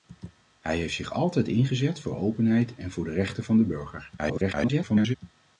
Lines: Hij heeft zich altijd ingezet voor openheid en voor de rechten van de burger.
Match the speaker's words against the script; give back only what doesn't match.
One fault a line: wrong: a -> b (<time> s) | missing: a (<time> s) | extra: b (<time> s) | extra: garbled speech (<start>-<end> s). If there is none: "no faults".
extra: garbled speech (4.2-5.2 s)